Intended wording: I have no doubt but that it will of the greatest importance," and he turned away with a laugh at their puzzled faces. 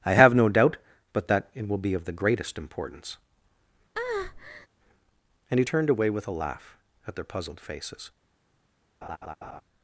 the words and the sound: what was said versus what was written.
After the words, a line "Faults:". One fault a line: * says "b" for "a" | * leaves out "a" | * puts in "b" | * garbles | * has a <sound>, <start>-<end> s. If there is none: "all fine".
I have no doubt but that it will be of the greatest importance," and he turned away with a laugh at their puzzled faces.
Faults:
* puts in "be"
* has a breath, 3.9-4.7 s
* has a laugh, 9.0-9.6 s